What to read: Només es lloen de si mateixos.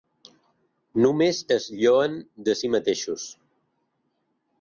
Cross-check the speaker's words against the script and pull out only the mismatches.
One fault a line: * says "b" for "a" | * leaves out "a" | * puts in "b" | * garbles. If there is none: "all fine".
all fine